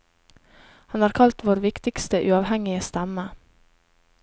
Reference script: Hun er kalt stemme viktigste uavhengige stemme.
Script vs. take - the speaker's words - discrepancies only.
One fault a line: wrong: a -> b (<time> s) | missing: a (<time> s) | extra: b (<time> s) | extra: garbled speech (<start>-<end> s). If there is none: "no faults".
wrong: Hun -> Han (0.9 s)
wrong: stemme -> vår (1.5 s)